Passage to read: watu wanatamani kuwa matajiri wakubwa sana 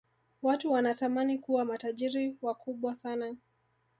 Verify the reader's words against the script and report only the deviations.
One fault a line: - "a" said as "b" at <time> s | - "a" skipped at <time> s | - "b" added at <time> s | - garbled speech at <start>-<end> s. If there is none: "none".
none